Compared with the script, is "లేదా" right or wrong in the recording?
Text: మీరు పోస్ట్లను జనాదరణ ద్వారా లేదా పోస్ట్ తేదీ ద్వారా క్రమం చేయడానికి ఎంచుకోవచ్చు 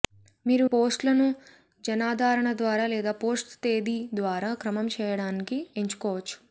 right